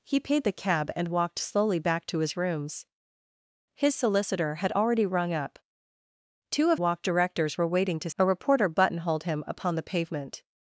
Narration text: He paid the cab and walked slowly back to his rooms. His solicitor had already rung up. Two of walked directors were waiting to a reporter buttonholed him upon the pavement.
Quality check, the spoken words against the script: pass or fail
pass